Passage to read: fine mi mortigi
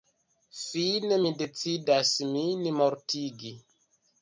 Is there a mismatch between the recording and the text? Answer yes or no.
yes